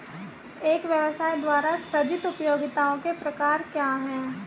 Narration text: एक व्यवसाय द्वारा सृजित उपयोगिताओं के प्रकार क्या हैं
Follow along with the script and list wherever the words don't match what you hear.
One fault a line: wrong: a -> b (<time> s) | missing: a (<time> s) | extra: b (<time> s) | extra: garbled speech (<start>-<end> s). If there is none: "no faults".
no faults